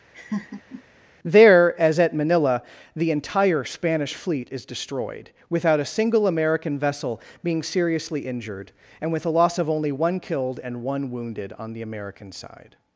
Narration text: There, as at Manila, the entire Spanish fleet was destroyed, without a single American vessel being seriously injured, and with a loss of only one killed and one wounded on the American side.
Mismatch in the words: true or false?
true